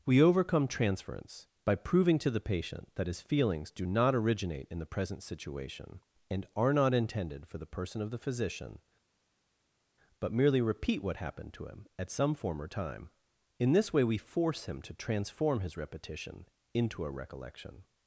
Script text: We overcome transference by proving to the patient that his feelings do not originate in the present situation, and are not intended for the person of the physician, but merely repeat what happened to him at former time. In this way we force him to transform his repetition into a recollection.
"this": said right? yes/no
yes